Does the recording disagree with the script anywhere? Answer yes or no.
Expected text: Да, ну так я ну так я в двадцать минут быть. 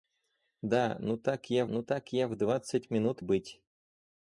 no